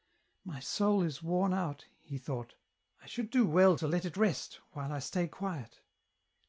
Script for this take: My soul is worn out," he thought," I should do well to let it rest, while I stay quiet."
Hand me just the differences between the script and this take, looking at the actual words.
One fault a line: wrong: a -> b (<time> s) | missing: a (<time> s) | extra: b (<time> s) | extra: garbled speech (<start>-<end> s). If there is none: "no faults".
no faults